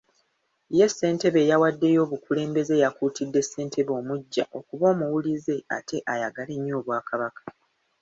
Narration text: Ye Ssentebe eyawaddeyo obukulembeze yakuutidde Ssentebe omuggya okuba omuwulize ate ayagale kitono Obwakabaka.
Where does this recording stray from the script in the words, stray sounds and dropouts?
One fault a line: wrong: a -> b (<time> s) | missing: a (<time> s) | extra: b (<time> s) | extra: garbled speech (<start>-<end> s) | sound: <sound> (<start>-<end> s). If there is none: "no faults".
wrong: kitono -> nnyo (6.6 s)